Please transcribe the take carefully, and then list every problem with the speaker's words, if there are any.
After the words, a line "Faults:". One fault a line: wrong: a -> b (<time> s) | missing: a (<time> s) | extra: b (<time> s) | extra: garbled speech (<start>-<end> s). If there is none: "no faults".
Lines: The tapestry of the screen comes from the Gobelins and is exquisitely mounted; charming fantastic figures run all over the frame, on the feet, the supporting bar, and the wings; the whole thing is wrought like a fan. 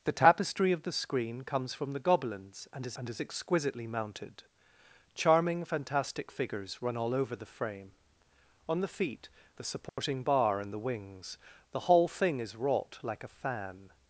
The tapestry of the screen comes from the Gobelins and is and is exquisitely mounted; charming fantastic figures run all over the frame, on the feet, the supporting bar, and the wings; the whole thing is wrought like a fan.
Faults:
extra: and is (3.0 s)